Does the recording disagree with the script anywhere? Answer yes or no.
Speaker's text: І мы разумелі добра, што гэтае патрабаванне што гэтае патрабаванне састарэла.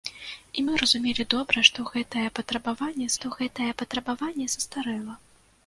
no